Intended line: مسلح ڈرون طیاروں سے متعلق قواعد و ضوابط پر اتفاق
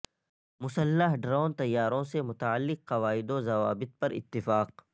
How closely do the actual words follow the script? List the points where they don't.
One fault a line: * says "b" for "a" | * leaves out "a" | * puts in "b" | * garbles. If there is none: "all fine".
all fine